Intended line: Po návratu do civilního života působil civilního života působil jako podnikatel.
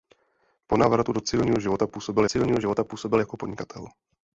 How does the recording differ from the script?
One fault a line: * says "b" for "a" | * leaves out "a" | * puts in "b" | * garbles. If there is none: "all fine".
all fine